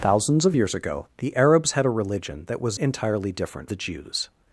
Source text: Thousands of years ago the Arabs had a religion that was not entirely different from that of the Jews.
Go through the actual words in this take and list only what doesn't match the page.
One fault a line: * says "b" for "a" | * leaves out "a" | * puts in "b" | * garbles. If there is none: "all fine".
* leaves out "not"
* leaves out "from that of"